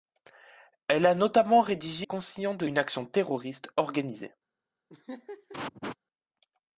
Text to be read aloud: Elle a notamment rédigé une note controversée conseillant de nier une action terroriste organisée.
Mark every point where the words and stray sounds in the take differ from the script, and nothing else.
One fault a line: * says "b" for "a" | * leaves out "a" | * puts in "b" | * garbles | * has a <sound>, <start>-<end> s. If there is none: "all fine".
* leaves out "une note controversée"
* leaves out "nier"
* has a laugh, 4.9-6.0 s